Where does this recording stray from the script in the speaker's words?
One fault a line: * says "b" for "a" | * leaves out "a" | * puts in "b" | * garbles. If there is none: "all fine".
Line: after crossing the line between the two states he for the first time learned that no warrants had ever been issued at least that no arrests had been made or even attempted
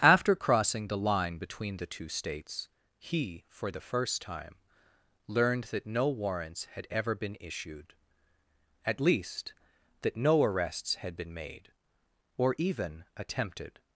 all fine